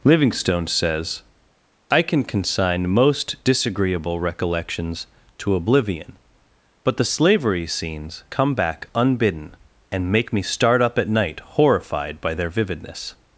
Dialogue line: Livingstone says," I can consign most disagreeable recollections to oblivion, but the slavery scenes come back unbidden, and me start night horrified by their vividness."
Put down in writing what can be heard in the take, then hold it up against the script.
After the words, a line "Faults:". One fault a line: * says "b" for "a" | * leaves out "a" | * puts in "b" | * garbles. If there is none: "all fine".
Livingstone says," I can consign most disagreeable recollections to oblivion, but the slavery scenes come back unbidden, and make me start up at night horrified by their vividness."
Faults:
* puts in "make"
* puts in "up at"